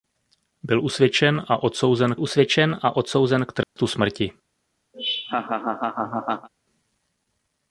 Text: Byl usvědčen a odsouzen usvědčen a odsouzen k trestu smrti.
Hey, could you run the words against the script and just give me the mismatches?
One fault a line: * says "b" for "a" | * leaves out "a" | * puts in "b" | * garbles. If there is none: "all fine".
all fine